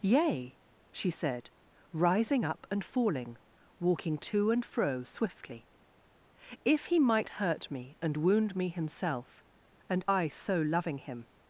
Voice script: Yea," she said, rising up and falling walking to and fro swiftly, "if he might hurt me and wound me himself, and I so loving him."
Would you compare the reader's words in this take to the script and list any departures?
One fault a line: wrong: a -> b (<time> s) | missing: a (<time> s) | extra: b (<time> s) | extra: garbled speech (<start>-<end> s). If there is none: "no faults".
no faults